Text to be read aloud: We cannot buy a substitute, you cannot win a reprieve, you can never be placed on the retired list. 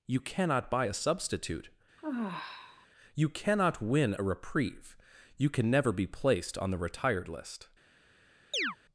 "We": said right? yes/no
no